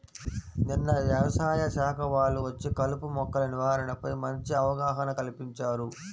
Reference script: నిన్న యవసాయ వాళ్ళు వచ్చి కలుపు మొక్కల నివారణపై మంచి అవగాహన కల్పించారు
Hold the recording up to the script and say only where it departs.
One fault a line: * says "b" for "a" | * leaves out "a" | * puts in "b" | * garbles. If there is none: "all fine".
* puts in "శాఖ"